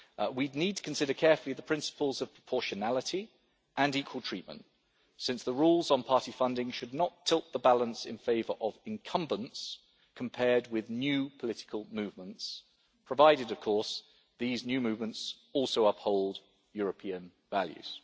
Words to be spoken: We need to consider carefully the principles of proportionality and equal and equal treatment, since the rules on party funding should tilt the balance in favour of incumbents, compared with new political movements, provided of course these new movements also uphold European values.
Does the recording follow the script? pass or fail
fail